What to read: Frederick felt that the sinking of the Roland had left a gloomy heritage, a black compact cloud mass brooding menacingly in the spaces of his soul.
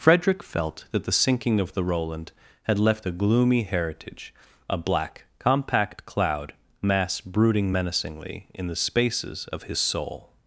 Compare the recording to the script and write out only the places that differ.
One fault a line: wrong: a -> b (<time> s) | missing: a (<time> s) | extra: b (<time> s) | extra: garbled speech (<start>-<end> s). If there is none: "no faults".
no faults